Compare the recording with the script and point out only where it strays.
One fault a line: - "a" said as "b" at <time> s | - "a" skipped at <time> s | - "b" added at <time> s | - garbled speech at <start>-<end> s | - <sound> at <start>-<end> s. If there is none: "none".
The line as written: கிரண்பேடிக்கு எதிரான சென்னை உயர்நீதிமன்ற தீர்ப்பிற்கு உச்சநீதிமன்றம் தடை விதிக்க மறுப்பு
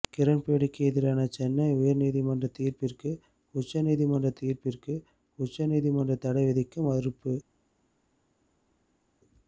- "தீர்ப்பிற்கு உச்சநீதிமன்றம்" added at 4.4 s